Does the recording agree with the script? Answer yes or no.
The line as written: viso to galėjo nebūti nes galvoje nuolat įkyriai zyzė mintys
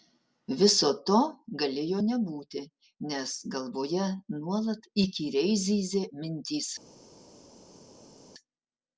yes